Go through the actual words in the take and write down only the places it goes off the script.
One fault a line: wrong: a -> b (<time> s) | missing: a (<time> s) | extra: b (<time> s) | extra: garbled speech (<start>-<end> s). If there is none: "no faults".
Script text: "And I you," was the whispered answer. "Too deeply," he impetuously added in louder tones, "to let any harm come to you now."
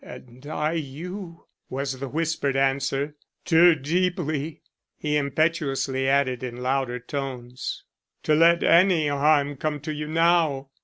no faults